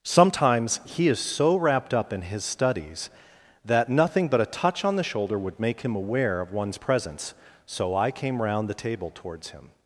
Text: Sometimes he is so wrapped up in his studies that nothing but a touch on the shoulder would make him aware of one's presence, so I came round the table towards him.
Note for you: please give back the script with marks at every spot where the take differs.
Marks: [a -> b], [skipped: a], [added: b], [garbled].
Sometimes he is so wrapped up in his studies that nothing but a touch on the shoulder would make him aware of one's presence, so I came round the table towards him.